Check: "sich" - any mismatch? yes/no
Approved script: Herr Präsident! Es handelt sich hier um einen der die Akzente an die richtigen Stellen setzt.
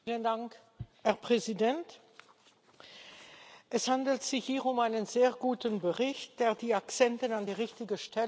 no